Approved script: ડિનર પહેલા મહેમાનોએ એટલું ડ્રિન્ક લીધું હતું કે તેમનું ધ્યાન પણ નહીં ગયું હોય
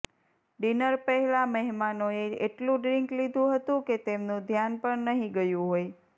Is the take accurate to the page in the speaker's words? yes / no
yes